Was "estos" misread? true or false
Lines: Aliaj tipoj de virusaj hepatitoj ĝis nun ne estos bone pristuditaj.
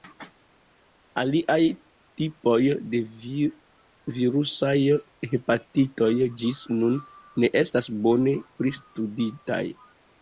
true